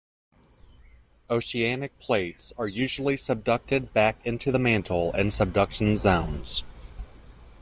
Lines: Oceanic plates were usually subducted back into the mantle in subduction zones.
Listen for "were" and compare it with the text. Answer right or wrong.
wrong